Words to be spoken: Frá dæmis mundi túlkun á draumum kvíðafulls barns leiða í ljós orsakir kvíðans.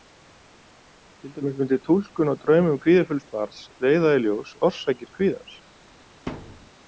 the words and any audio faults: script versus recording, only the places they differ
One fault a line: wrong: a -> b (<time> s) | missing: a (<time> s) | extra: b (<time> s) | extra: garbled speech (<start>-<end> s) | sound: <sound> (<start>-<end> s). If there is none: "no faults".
wrong: Frá -> Til (1.2 s)
sound: thud (6.3-6.7 s)